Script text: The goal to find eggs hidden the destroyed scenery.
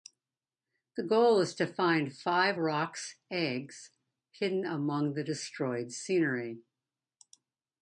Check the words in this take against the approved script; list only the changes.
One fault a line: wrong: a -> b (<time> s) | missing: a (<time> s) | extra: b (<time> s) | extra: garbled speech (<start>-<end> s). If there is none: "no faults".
extra: is (1.4 s)
extra: five Roc's (2.1 s)
extra: among (4.6 s)